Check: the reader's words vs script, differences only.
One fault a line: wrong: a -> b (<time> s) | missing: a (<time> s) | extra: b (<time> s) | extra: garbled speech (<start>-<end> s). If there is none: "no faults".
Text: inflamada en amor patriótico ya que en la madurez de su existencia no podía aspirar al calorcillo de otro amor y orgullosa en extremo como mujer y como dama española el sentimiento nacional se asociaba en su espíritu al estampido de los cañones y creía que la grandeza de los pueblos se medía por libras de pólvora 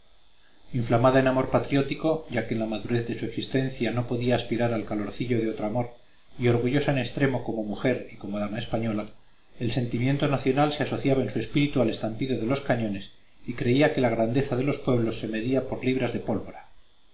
no faults